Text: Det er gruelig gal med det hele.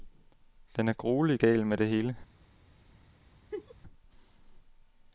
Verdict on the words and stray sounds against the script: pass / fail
fail